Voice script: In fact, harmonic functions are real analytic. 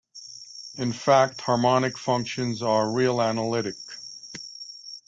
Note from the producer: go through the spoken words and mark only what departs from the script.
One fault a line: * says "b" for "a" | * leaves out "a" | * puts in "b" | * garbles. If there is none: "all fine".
all fine